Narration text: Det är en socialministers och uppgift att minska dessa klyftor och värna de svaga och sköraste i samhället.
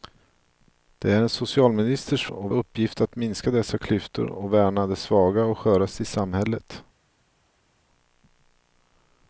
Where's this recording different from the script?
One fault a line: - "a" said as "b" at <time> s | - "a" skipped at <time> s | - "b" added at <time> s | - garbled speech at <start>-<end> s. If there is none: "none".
none